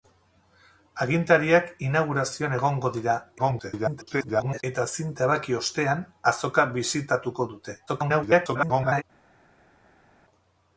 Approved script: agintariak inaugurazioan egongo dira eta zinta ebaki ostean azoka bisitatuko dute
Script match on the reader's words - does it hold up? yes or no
no